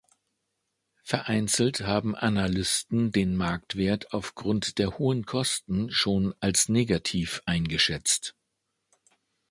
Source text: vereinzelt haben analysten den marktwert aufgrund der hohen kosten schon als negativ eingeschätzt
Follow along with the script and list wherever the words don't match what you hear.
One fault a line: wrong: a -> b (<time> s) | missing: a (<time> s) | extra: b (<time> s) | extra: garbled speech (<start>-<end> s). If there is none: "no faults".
no faults